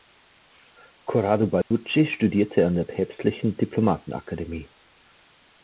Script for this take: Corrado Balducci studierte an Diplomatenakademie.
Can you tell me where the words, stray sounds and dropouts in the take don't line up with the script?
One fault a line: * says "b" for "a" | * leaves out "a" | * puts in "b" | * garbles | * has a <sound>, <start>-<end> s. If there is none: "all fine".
* has a dropout, 1.6-1.7 s
* puts in "der Päpstlichen"